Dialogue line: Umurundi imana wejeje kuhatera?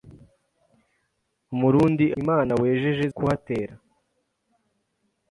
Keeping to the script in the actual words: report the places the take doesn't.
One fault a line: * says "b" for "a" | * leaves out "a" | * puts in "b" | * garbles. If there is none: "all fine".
all fine